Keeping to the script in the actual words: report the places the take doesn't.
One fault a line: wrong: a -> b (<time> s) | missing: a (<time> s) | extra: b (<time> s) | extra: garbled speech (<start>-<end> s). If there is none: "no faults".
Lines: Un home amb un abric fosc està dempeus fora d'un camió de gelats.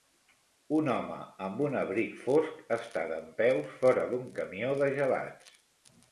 no faults